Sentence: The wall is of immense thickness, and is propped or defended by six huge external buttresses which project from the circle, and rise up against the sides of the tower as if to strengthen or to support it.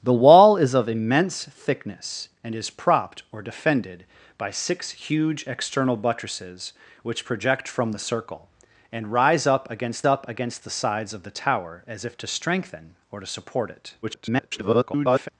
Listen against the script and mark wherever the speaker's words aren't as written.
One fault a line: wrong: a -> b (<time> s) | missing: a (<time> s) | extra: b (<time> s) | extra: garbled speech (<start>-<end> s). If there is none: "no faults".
extra: up against (10.0 s)
extra: garbled speech (14.0-15.3 s)